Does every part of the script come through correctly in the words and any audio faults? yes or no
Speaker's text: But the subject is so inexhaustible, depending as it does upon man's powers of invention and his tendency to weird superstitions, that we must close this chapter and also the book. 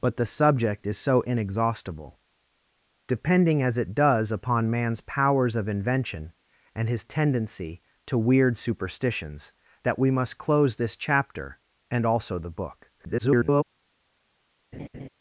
no